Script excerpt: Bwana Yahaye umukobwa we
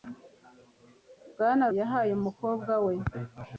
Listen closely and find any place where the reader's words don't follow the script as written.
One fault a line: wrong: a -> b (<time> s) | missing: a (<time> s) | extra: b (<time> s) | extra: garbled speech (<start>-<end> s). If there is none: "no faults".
no faults